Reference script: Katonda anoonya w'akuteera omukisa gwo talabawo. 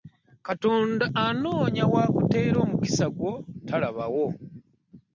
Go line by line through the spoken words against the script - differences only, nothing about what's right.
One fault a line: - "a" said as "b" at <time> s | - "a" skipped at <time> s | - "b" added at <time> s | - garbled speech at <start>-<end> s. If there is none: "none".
none